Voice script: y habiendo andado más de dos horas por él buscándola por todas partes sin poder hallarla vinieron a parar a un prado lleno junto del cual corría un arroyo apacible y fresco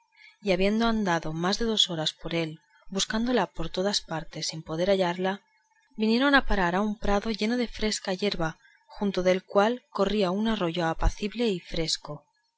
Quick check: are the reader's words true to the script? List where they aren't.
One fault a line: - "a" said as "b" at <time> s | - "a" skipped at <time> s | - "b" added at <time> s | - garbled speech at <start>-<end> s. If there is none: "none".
- "de fresca yerba" added at 7.6 s